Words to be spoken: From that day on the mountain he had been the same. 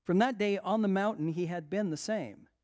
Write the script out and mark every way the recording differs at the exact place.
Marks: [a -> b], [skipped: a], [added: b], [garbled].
From that day on the mountain he had been the same.